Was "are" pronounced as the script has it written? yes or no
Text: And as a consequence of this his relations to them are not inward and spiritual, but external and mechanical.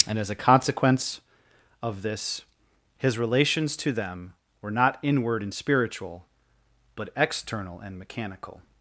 no